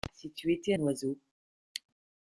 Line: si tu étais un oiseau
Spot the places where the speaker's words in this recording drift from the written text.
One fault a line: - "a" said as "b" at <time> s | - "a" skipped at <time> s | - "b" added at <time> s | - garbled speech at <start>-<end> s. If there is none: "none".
none